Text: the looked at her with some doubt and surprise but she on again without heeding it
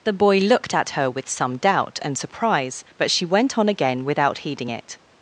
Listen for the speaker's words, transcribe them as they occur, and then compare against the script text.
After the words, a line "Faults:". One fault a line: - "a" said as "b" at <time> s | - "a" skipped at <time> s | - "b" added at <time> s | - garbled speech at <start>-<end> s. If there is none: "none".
the boy looked at her with some doubt and surprise but she went on again without heeding it
Faults:
- "boy" added at 0.1 s
- "went" added at 3.3 s